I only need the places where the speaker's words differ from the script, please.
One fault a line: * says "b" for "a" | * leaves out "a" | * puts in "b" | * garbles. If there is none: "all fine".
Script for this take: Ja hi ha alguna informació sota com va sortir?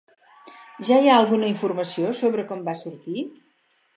* says "sobre" for "sota"